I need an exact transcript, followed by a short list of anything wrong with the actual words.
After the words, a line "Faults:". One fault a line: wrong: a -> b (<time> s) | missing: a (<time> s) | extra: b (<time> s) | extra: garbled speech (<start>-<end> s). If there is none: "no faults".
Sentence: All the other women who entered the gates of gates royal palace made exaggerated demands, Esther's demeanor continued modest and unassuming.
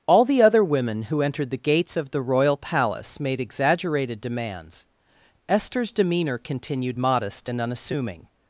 All the other women who entered the gates of the royal palace made exaggerated demands, Esther's demeanor continued modest and unassuming.
Faults:
wrong: gates -> the (2.1 s)